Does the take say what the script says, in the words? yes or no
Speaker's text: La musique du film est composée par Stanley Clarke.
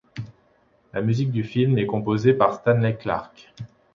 yes